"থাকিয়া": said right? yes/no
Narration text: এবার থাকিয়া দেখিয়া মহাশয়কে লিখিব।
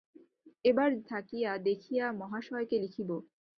yes